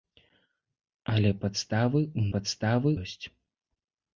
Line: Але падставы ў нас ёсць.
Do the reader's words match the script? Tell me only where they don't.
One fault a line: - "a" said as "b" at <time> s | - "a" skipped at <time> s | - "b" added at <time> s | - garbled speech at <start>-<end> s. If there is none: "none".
- "нас" said as "падставы" at 2.3 s